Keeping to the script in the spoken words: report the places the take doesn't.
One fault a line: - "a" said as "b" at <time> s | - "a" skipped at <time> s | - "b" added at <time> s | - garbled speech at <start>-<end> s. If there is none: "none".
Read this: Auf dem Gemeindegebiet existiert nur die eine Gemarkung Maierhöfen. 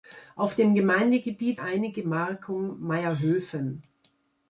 - "existiert nur die" skipped at 1.6 s